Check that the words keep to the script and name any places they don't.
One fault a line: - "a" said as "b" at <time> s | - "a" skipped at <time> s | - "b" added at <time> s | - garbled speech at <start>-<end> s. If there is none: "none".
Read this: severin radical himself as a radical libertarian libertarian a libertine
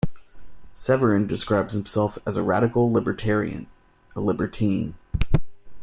- "radical" said as "describes" at 1.3 s
- "libertarian" skipped at 3.7 s